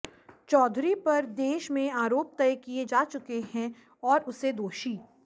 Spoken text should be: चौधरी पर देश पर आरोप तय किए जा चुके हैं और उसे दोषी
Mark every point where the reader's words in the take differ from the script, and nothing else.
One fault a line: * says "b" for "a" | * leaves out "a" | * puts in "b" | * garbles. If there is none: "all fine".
* says "में" for "पर"